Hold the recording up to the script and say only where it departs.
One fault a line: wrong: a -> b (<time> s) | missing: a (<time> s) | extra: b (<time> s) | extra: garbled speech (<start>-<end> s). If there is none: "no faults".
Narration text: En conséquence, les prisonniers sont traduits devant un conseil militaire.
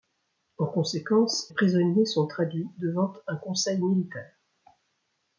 missing: les (1.5 s)